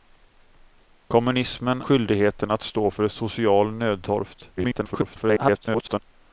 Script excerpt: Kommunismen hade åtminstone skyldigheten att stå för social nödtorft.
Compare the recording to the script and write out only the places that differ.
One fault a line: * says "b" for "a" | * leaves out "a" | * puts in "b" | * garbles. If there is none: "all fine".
* leaves out "hade åtminstone"
* garbles